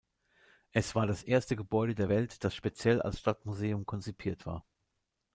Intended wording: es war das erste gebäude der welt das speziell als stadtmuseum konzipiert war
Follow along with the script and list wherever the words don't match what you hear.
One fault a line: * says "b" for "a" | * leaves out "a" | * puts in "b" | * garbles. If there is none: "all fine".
all fine